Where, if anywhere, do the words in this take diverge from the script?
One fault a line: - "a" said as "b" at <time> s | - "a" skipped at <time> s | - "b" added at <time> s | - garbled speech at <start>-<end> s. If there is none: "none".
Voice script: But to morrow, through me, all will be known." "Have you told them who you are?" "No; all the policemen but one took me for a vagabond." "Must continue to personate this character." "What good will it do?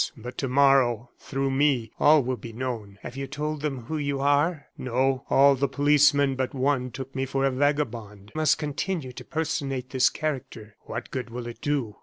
none